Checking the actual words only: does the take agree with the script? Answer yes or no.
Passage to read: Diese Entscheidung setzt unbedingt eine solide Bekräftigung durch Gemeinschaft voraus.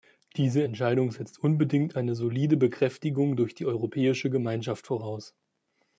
no